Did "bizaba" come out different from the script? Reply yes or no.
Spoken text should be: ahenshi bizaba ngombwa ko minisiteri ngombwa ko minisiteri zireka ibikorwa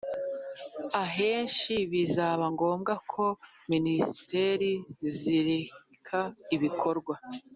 no